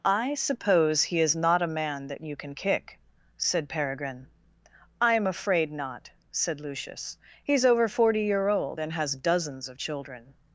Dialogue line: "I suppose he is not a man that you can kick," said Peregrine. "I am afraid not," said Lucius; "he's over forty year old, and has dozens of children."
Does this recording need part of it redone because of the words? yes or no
no